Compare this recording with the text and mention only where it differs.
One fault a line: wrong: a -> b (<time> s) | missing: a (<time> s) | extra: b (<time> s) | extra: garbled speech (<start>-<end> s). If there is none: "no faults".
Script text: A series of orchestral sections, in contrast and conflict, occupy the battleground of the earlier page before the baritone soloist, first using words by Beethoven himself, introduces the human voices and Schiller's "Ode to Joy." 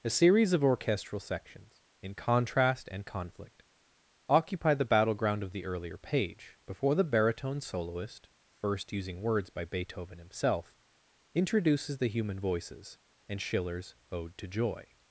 no faults